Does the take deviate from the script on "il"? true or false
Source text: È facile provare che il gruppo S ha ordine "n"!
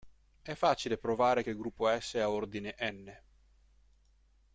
false